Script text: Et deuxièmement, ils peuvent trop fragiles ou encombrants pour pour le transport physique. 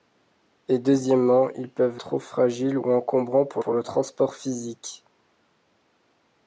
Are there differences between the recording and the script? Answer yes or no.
no